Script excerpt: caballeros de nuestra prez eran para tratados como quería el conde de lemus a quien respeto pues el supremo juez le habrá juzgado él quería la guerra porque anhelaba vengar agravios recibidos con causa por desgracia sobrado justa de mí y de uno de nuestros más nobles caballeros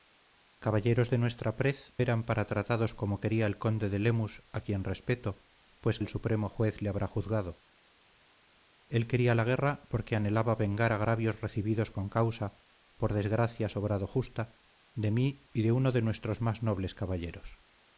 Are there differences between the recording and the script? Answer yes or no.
no